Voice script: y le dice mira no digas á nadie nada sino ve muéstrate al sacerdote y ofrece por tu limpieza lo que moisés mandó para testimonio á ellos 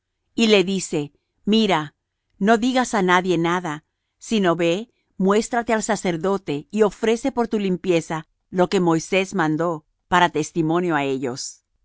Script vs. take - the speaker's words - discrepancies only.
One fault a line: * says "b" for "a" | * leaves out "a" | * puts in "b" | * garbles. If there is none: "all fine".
all fine